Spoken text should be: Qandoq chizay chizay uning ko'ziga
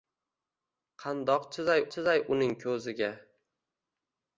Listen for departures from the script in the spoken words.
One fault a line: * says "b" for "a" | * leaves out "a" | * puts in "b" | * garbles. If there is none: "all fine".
all fine